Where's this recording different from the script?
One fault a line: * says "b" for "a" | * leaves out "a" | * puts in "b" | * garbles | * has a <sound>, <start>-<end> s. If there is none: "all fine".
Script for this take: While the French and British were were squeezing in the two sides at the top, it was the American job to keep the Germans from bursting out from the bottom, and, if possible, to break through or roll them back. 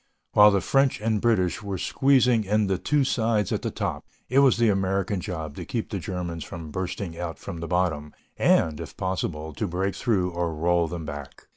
* leaves out "were"